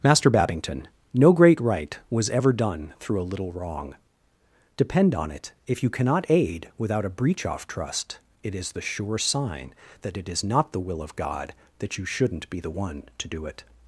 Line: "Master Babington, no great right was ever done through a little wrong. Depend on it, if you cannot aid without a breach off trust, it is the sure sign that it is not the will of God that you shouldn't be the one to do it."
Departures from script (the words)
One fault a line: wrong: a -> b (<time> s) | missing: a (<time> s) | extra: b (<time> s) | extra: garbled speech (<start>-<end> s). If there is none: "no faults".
no faults